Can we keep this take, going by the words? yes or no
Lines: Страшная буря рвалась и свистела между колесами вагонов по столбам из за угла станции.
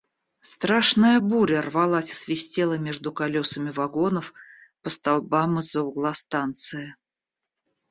yes